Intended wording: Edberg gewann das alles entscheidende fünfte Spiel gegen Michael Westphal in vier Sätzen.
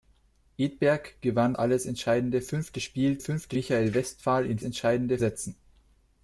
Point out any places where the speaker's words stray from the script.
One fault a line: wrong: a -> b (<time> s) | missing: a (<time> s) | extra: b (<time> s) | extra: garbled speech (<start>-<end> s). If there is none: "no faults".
missing: das (1.5 s)
wrong: gegen -> fünfte (3.2 s)
wrong: vier -> entscheidende (4.6 s)